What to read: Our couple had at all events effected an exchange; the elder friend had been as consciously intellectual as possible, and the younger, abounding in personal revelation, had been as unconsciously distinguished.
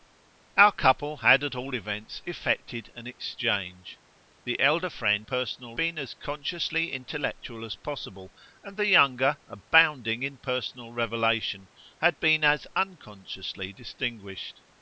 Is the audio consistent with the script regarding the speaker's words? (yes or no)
no